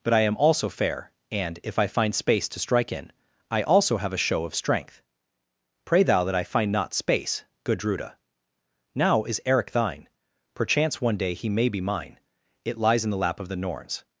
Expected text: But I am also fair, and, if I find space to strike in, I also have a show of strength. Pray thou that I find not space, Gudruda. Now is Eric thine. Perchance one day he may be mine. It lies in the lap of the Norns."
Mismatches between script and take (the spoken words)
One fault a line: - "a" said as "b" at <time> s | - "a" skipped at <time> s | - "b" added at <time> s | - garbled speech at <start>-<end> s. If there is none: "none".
none